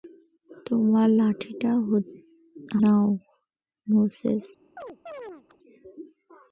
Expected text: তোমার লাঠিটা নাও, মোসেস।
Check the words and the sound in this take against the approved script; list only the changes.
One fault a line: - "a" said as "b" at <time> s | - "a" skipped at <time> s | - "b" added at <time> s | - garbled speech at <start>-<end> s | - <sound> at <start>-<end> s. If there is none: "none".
- chirp at 4.8-5.6 s